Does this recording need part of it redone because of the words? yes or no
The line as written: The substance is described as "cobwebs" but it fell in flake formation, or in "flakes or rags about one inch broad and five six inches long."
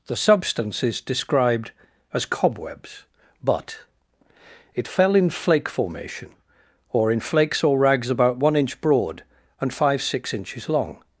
no